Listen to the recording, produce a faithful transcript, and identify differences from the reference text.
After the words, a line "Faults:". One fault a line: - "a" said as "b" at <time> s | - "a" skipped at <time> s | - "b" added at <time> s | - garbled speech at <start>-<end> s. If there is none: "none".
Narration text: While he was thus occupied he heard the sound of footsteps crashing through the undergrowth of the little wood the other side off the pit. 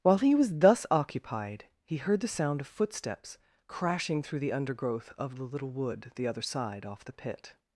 While he was thus occupied he heard the sound of footsteps crashing through the undergrowth of the little wood the other side off the pit.
Faults:
none